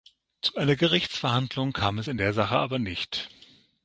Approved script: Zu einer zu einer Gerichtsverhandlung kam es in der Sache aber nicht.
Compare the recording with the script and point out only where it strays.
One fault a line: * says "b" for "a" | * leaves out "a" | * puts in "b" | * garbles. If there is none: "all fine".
* leaves out "zu einer"